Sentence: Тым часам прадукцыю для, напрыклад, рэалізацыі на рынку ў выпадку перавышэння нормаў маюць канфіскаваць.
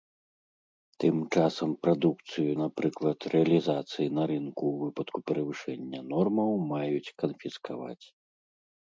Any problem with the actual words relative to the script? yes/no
yes